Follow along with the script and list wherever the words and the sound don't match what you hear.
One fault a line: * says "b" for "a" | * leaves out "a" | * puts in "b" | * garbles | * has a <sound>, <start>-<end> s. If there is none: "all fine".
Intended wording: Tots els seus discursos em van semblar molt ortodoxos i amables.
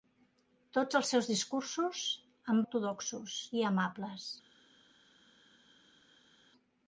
* leaves out "van semblar molt"